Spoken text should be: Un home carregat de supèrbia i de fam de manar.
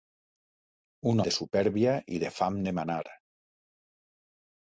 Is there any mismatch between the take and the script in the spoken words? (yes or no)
yes